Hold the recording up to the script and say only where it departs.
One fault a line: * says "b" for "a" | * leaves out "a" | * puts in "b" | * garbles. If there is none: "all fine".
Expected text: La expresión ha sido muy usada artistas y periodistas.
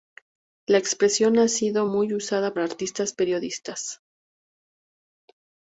all fine